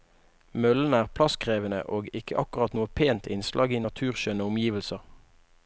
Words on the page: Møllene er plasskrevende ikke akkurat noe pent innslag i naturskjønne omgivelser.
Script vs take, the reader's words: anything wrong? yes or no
yes